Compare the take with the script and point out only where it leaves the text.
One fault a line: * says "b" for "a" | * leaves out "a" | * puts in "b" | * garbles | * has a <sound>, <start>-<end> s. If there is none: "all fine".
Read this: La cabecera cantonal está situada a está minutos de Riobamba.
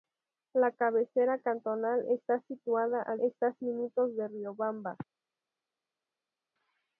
all fine